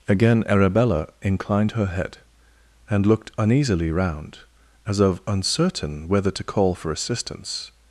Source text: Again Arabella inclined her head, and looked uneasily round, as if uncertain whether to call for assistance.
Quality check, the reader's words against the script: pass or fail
fail